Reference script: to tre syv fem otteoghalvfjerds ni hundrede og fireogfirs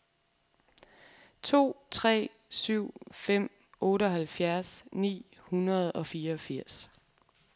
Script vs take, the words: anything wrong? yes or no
no